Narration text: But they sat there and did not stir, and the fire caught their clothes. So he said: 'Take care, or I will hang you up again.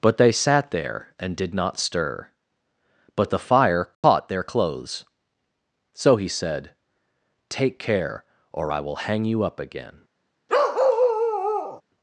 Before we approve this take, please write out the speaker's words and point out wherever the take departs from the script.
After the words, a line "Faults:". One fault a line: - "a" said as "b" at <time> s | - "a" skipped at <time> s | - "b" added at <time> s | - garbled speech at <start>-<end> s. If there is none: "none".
But they sat there and did not stir, but the fire caught their clothes. So he said: 'Take care, or I will hang you up again.
Faults:
- "and" said as "but" at 3.1 s